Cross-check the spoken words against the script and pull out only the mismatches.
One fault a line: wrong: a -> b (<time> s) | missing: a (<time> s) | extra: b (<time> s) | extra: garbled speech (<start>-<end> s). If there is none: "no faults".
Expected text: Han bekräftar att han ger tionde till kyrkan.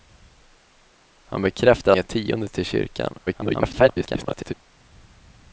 missing: att han (1.9 s)
extra: garbled speech (3.3-4.5 s)